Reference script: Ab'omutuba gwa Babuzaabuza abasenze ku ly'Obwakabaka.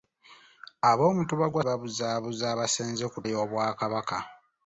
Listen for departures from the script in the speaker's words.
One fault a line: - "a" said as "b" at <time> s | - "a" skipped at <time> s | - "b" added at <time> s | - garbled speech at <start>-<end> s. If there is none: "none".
none